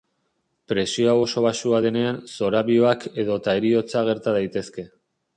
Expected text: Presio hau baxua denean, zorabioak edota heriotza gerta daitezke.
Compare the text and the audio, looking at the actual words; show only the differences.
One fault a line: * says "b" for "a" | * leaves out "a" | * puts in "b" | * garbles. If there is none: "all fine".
* puts in "oso"